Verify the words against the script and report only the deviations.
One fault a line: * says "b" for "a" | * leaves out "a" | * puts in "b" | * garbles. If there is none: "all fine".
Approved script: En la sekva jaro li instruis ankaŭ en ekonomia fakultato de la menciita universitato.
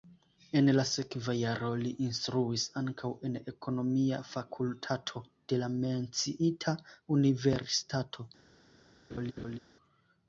all fine